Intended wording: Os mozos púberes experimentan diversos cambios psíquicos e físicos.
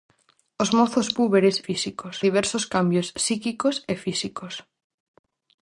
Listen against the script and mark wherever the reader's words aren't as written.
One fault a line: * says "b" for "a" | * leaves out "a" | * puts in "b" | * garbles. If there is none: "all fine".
* says "físicos" for "experimentan"